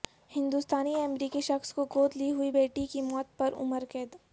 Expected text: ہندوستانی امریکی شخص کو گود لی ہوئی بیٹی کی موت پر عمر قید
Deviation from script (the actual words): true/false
false